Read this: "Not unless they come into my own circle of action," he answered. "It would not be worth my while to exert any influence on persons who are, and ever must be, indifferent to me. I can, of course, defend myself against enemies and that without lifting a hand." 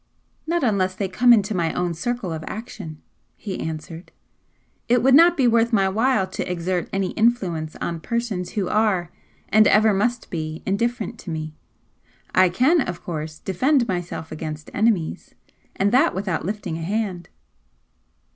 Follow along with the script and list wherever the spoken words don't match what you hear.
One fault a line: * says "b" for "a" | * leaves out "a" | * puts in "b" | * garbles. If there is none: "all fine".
all fine